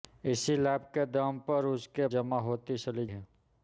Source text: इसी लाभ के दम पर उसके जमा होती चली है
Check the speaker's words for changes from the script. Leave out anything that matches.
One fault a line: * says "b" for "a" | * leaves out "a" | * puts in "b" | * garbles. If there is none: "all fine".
all fine